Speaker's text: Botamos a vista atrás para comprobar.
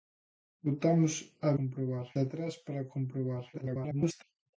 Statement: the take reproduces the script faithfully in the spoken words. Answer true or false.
false